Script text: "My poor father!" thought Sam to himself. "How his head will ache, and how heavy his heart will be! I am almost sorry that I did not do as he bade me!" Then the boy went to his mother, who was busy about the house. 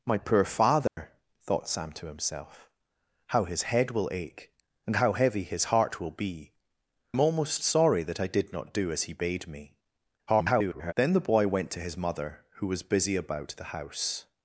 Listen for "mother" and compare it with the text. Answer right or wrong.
right